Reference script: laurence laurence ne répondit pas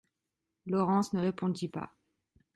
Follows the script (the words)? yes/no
no